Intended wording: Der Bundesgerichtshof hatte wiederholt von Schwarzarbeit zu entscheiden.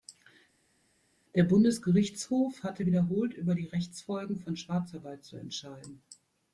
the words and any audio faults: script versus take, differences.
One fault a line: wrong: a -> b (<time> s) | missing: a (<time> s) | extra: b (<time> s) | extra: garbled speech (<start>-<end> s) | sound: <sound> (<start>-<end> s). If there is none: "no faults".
extra: über die Rechtsfolgen (3.3 s)